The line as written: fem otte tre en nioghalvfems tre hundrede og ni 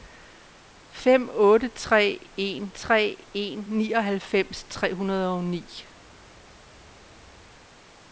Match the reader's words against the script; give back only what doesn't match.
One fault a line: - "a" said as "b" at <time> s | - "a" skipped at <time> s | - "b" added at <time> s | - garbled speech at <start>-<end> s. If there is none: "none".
- "tre en" added at 2.7 s